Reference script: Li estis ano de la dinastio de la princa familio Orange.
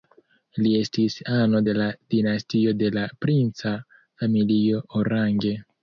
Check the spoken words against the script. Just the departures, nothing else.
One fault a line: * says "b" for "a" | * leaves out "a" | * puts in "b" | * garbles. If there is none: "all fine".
all fine